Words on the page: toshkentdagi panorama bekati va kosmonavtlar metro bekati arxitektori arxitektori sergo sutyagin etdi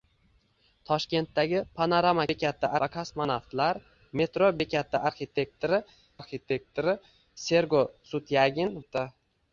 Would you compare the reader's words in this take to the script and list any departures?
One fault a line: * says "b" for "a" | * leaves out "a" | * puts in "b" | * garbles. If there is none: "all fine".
all fine